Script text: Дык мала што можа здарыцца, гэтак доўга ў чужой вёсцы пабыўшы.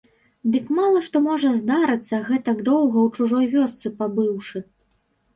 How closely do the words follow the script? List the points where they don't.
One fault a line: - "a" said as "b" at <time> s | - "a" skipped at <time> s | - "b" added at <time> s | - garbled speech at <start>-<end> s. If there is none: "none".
none